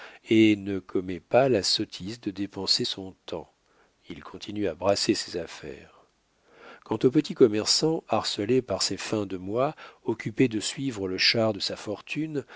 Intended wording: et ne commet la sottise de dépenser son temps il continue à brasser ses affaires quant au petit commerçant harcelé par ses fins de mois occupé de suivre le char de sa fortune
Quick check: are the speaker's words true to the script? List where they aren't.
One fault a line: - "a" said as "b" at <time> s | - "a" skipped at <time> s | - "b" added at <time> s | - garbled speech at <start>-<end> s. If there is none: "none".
- "pas" added at 1.2 s